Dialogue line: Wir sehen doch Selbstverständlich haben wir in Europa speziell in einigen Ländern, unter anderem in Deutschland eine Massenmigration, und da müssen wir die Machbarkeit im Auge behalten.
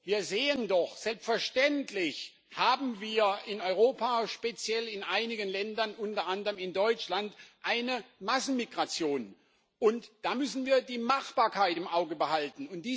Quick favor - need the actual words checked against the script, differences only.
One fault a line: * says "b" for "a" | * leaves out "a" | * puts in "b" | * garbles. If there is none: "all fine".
all fine